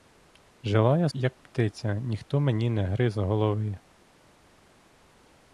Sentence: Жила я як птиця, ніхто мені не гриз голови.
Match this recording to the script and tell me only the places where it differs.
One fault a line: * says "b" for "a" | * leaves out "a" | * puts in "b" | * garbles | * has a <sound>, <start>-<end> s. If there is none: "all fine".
all fine